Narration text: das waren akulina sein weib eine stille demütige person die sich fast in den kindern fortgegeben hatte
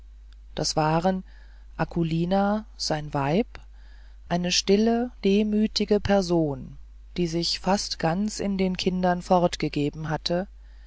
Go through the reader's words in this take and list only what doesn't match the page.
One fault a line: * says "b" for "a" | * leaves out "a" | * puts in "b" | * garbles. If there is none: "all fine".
* puts in "ganz"